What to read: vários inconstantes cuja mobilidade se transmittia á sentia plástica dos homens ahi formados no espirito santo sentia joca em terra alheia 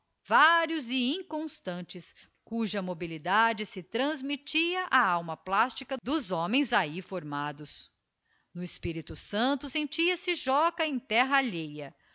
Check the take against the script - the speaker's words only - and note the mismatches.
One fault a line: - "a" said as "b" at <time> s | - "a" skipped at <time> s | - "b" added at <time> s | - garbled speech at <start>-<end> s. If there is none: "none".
- "e" added at 0.9 s
- "sentia" said as "alma" at 5.0 s
- "se" added at 10.2 s